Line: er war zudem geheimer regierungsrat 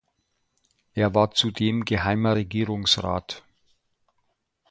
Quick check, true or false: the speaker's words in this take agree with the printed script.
true